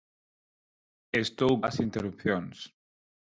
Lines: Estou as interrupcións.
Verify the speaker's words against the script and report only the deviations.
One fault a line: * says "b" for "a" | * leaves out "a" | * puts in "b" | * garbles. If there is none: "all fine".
all fine